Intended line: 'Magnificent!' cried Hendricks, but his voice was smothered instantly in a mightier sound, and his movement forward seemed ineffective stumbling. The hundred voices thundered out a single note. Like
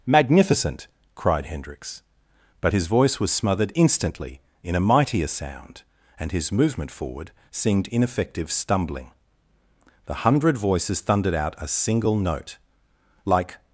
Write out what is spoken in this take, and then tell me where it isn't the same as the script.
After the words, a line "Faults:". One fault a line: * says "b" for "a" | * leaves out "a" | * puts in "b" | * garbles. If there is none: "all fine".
'Magnificent!' cried Hendricks, but his voice was smothered instantly in a mightier sound, and his movement forward seemed ineffective stumbling. The hundred voices thundered out a single note. Like
Faults:
all fine